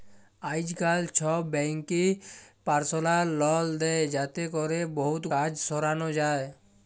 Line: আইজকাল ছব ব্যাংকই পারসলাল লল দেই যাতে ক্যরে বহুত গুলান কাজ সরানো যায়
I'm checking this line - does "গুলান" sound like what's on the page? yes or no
no